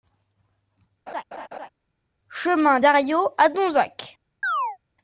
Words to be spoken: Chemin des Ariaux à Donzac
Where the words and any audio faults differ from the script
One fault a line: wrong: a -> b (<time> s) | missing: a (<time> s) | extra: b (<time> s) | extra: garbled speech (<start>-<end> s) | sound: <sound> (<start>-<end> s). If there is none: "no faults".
sound: laugh (1.1-1.7 s)
missing: des (2.8 s)
sound: chirp (4.4-4.8 s)